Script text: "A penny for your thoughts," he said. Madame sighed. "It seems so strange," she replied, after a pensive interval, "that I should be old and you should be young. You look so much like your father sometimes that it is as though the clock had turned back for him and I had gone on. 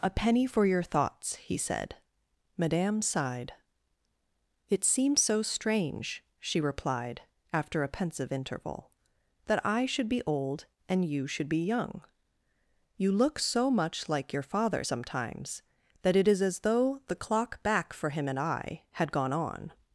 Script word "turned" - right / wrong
wrong